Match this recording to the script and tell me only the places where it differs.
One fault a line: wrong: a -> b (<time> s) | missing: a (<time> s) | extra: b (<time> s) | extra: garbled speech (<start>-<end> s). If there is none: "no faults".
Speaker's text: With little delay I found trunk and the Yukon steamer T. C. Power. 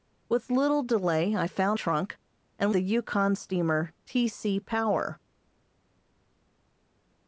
no faults